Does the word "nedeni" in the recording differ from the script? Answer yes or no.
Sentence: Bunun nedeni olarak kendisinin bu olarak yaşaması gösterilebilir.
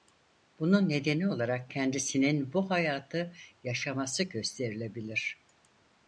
no